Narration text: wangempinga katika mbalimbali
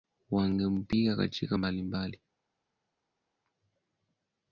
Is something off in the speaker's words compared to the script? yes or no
no